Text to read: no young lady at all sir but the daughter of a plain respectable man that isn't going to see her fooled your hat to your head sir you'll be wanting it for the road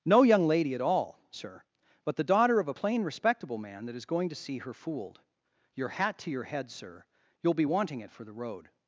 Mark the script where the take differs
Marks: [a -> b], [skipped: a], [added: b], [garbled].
no young lady at all sir but the daughter of a plain respectable man that [isn't -> is] going to see her fooled your hat to your head sir you'll be wanting it for the road